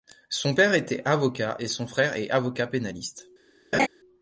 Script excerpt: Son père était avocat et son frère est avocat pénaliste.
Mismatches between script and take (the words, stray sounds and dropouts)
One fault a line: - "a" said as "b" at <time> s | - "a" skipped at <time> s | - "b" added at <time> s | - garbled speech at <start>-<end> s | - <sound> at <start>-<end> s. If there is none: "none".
- laugh at 3.7-3.9 s